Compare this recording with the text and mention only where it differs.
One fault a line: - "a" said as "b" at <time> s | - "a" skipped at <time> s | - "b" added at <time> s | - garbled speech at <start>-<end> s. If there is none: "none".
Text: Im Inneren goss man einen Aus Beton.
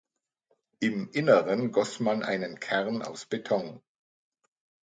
- "Kern" added at 2.6 s